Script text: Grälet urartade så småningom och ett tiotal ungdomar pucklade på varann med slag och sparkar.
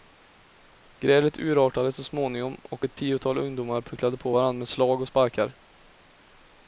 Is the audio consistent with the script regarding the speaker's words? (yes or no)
yes